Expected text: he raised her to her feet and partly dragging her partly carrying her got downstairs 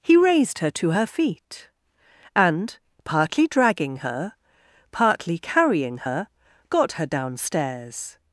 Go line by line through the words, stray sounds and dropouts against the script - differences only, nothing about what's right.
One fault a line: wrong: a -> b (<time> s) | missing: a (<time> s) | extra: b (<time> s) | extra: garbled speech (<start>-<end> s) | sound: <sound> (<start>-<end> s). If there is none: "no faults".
extra: her (6.9 s)